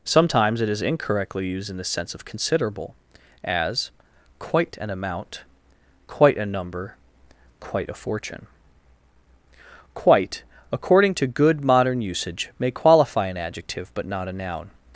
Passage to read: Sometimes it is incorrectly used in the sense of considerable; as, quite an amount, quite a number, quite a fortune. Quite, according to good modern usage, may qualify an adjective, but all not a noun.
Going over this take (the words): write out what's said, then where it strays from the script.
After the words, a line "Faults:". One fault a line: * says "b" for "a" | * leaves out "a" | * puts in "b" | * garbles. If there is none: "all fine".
Sometimes it is incorrectly used in the sense of considerable; as, quite an amount, quite a number, quite a fortune. Quite, according to good modern usage, may qualify an adjective, but not a noun.
Faults:
* leaves out "all"